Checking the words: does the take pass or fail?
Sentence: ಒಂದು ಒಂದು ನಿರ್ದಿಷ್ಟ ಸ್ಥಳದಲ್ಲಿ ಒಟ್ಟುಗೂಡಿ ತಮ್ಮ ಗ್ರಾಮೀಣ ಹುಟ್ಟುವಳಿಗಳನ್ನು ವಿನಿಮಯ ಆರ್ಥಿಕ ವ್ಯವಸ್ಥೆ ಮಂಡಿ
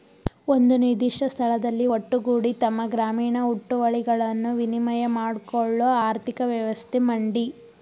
fail